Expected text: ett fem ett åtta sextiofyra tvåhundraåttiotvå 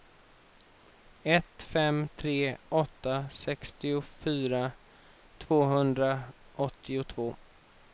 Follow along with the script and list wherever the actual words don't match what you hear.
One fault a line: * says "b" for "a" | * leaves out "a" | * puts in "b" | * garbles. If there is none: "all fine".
* says "tre" for "ett"